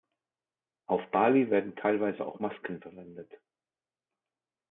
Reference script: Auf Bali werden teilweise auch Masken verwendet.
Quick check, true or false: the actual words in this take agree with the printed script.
true